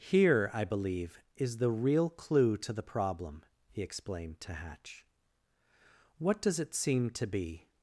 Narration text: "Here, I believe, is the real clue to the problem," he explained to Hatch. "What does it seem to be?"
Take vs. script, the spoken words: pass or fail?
pass